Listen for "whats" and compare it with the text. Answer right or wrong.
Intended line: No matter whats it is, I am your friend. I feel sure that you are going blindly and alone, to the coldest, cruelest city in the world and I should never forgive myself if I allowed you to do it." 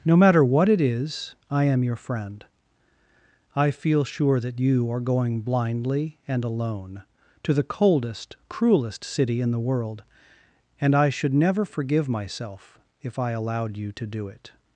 wrong